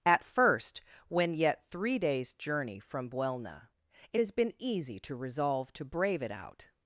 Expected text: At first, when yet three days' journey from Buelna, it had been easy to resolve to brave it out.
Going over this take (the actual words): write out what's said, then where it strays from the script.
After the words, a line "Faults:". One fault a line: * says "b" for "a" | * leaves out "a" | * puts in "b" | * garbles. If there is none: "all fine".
At first, when yet three days' journey from Buelna, it has been easy to resolve to brave it out.
Faults:
* says "has" for "had"